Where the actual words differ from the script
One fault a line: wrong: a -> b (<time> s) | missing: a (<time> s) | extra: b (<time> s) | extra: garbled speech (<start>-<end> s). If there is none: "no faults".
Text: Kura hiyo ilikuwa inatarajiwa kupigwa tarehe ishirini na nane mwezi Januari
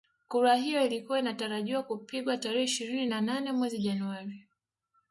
no faults